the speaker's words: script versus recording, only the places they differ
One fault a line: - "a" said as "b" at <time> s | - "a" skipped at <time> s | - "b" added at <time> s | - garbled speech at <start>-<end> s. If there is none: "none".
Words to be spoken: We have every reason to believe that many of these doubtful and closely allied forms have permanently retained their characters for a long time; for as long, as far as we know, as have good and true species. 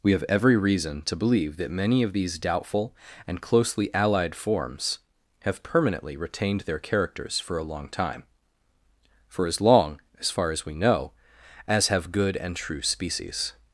none